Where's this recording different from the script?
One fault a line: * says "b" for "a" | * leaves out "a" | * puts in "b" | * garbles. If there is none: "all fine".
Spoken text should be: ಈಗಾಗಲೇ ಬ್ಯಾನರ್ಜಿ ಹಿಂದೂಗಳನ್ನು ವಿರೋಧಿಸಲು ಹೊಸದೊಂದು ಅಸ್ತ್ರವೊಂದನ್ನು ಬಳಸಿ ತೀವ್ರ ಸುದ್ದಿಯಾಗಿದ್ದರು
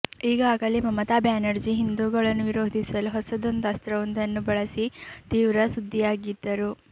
* puts in "ಮಮತಾ"